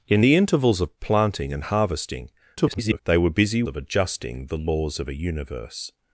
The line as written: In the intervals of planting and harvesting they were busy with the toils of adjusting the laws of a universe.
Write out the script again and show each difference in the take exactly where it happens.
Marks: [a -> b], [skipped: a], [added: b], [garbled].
In the intervals of planting and harvesting [garbled] they were busy [skipped: with the toils] of adjusting the laws of a universe.